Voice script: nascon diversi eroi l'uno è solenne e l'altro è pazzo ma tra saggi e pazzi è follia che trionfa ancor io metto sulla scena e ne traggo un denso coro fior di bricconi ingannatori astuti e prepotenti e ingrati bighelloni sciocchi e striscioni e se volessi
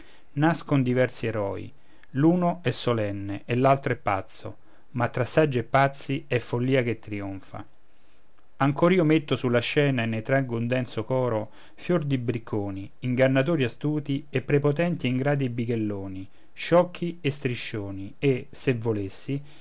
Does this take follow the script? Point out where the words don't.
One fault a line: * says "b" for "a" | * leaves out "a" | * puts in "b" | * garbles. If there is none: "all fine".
all fine